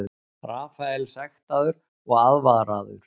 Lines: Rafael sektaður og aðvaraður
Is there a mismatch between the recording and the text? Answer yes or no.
no